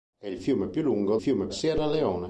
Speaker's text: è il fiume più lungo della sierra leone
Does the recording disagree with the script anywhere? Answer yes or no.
yes